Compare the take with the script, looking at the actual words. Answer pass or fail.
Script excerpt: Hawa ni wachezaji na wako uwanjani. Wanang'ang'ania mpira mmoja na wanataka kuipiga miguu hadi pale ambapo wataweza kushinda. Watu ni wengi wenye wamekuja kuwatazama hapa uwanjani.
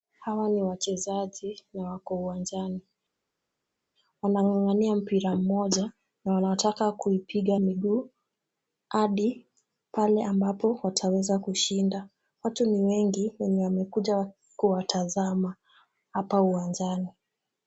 pass